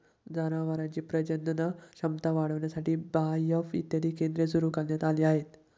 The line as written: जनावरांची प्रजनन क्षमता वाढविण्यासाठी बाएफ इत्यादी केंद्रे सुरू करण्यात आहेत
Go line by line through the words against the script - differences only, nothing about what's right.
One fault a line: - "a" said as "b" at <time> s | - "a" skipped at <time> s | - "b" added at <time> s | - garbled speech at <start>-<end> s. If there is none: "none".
- "आली" added at 5.0 s